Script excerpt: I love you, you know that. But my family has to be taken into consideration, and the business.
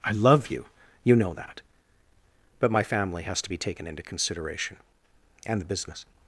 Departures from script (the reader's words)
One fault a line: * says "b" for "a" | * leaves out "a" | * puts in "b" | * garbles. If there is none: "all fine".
all fine